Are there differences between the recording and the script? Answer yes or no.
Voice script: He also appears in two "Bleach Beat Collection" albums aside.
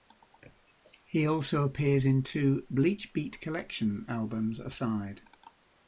no